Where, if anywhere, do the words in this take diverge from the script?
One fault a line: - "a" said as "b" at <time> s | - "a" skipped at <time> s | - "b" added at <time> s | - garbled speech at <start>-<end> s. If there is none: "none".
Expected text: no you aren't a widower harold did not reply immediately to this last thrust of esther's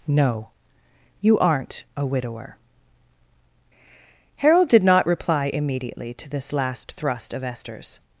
none